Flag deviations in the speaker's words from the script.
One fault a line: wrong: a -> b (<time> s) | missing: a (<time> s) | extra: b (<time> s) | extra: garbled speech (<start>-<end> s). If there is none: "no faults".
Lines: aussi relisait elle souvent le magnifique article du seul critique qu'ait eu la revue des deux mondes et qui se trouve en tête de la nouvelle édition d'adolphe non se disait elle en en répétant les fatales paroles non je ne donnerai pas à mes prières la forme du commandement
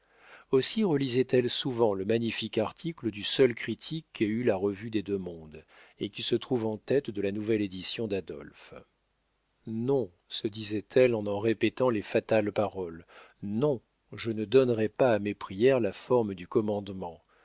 no faults